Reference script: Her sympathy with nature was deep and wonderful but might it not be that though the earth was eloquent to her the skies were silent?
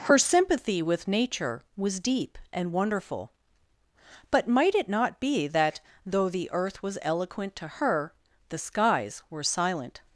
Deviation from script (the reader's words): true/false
false